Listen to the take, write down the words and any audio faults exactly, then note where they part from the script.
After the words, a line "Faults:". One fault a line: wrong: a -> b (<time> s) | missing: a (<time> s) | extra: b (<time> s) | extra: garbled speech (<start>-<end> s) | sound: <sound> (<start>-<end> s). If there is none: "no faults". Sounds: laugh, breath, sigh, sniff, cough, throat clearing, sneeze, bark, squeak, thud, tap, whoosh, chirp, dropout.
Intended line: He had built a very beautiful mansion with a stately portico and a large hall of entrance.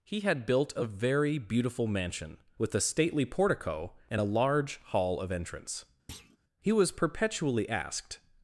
He had built a very beautiful mansion with a stately portico and a large hall of entrance. He was perpetually asked
Faults:
sound: thud (6.1-6.4 s)
extra: He was perpetually asked (6.6 s)